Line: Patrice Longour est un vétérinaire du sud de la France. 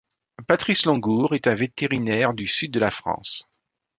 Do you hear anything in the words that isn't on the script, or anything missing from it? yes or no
no